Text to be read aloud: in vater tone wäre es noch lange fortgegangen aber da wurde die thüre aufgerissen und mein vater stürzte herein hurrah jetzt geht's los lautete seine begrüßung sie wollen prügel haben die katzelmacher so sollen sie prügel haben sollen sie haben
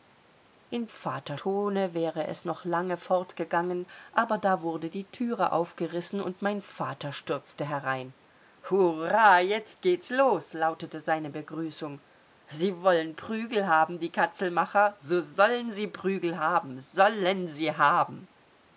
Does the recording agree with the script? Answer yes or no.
yes